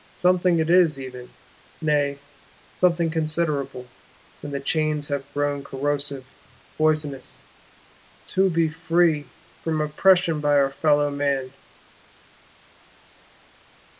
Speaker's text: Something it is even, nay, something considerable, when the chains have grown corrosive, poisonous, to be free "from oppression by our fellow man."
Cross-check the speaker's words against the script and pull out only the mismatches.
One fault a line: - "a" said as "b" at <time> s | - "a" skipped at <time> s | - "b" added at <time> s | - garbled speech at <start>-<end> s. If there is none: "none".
none